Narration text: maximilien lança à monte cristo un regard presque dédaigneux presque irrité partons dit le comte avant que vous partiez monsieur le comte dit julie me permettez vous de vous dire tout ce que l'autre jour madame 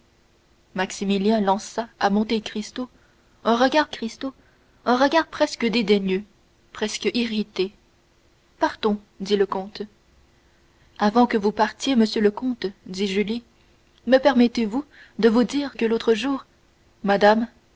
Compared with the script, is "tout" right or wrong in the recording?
wrong